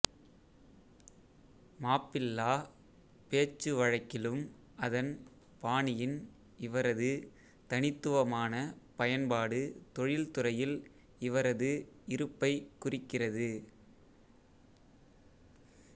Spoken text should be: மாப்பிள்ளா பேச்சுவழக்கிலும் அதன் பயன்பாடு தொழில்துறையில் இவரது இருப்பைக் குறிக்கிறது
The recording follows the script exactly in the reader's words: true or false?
false